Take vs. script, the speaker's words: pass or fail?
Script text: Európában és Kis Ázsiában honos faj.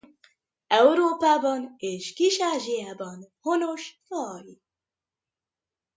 pass